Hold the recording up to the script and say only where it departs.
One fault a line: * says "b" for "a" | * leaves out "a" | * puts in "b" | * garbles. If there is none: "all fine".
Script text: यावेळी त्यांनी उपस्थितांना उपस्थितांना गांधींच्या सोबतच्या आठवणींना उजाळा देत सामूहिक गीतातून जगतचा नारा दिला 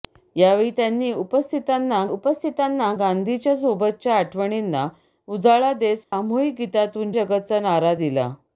all fine